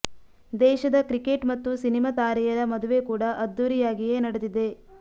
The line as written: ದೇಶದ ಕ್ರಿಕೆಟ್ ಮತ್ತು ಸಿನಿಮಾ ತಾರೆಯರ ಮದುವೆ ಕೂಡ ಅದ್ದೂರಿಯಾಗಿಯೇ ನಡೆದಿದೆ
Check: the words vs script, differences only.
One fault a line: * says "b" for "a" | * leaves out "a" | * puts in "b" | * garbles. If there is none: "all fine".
all fine